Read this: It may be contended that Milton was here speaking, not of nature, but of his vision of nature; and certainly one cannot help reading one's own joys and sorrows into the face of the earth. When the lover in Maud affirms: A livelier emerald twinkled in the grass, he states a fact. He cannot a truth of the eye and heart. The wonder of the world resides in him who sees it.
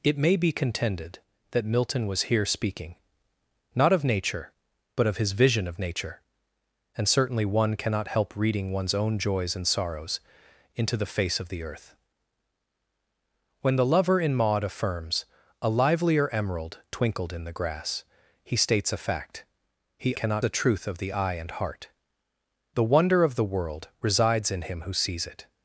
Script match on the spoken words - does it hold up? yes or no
yes